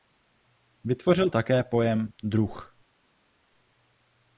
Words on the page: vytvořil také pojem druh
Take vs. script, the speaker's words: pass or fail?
pass